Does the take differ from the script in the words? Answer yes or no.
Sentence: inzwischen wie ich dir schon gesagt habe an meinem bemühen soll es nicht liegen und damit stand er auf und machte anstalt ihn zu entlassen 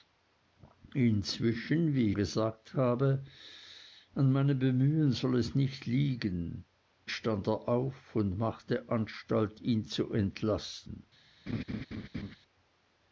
yes